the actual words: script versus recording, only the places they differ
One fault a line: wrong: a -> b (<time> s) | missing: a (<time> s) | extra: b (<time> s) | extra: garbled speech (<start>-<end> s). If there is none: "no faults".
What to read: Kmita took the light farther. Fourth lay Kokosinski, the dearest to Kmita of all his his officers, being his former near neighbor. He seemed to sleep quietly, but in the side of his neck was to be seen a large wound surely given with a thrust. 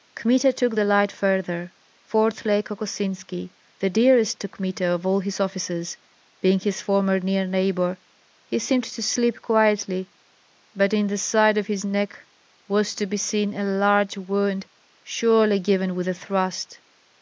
missing: his (5.4 s)